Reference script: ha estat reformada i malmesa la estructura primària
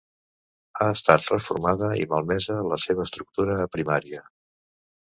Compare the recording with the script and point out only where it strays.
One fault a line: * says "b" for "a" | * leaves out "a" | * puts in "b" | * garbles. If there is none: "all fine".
* puts in "seva"